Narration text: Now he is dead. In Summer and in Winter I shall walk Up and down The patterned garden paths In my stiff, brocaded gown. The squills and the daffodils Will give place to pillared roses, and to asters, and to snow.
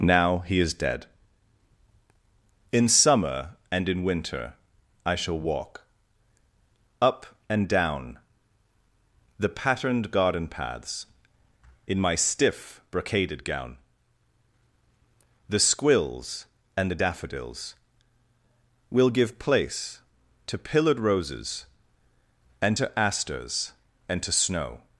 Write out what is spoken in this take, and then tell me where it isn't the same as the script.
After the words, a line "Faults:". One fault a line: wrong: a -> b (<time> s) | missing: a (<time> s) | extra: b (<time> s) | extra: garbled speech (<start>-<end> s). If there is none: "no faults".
Now he is dead. In Summer and in Winter I shall walk Up and down The patterned garden paths In my stiff, brocaded gown. The squills and the daffodils Will give place to pillared roses, and to asters, and to snow.
Faults:
no faults